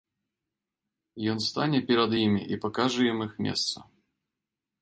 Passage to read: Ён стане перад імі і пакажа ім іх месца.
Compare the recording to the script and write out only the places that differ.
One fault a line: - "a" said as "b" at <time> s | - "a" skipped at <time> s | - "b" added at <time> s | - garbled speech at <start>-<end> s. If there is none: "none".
none